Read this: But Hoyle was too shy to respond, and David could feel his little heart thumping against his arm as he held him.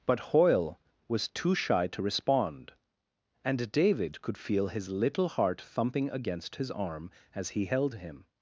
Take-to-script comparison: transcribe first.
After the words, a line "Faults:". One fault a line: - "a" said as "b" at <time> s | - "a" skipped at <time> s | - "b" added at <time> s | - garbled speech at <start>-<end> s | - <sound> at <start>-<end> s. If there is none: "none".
But Hoyle was too shy to respond, and David could feel his little heart thumping against his arm as he held him.
Faults:
none